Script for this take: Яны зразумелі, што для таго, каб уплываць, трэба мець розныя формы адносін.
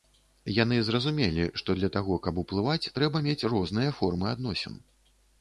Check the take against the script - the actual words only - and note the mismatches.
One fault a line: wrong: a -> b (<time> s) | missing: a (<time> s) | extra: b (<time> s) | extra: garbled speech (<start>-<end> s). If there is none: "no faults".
no faults